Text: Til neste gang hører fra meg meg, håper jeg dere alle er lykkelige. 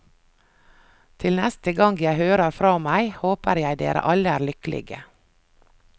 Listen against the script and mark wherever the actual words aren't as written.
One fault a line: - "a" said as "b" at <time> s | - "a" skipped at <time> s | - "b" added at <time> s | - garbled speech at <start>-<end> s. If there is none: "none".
- "jeg" added at 2.0 s
- "meg" skipped at 3.1 s